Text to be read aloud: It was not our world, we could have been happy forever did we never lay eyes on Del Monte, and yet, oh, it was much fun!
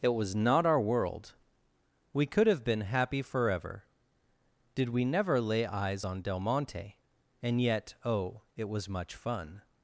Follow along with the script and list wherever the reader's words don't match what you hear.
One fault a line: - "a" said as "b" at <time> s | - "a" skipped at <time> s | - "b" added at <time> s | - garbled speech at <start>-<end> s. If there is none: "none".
none